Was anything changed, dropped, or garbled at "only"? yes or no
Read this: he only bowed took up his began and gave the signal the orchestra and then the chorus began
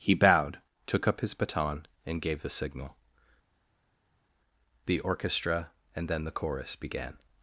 yes